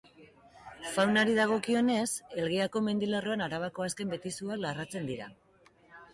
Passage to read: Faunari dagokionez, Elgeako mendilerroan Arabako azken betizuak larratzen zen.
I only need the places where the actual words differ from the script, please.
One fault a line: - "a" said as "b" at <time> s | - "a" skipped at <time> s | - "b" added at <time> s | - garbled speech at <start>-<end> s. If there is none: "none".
- "zen" said as "dira" at 5.1 s